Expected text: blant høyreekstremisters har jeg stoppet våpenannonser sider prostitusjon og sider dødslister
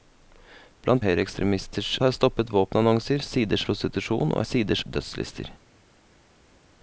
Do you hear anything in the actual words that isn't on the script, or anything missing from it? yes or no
no